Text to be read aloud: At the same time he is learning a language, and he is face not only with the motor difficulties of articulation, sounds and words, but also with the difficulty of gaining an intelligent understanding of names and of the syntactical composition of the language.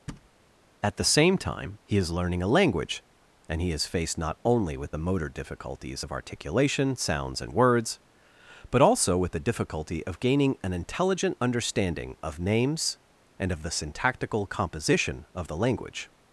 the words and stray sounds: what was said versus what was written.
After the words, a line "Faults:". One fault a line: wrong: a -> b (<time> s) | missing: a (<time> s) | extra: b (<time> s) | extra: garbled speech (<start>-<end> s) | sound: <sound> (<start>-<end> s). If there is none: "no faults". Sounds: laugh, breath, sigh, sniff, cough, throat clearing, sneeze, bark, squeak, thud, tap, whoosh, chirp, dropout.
At the same time he is learning a language, and he is faced not only with the motor difficulties of articulation, sounds and words, but also with the difficulty of gaining an intelligent understanding of names and of the syntactical composition of the language.
Faults:
sound: thud (0.1-0.3 s)
wrong: face -> faced (3.9 s)